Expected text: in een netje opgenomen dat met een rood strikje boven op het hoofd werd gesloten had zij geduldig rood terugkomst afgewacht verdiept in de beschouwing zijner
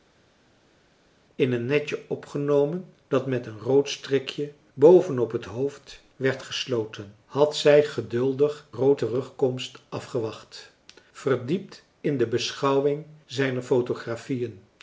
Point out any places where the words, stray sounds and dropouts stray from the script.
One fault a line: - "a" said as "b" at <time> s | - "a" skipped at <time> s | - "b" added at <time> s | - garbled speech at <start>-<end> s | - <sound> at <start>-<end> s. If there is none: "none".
none